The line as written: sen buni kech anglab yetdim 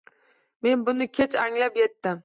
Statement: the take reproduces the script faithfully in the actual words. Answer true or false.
false